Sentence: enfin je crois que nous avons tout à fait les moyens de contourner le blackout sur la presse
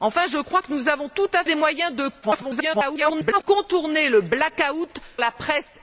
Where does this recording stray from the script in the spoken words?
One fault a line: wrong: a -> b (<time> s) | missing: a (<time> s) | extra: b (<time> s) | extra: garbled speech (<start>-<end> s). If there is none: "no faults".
missing: fait (1.4 s)
extra: garbled speech (2.2-3.4 s)
missing: sur (5.0 s)